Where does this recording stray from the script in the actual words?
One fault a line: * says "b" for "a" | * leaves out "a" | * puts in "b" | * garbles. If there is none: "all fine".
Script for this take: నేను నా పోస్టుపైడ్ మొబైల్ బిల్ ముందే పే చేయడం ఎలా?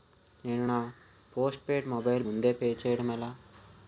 * leaves out "బిల్"